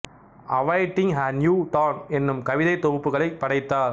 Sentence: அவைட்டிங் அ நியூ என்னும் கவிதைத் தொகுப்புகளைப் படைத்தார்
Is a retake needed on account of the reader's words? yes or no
yes